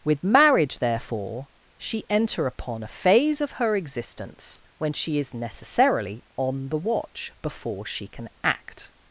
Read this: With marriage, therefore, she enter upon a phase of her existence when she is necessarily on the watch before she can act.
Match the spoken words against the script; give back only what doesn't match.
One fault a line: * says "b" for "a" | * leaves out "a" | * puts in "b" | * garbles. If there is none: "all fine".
all fine